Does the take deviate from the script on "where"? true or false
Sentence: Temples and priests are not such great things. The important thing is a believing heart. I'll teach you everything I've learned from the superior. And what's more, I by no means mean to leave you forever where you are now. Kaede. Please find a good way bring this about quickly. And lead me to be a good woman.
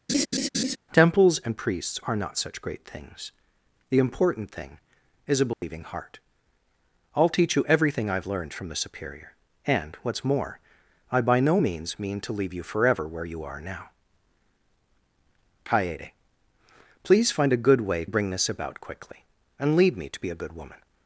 false